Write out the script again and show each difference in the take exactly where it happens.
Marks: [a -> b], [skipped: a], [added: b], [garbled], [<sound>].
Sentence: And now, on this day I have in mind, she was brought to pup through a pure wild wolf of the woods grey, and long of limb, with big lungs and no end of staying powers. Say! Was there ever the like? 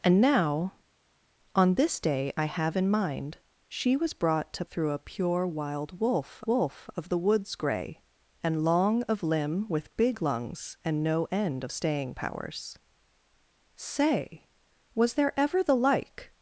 And now, on this day I have in mind, she was brought to [skipped: pup] through a pure wild wolf [added: wolf] of the woods grey, and long of limb, with big lungs and no end of staying powers. Say! Was there ever the like?